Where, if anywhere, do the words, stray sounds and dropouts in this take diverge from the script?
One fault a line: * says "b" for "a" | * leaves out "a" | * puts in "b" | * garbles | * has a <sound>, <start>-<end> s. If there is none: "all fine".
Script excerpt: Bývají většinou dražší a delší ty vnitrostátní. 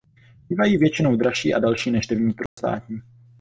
* puts in "než"
* has a dropout, 2.5-2.6 s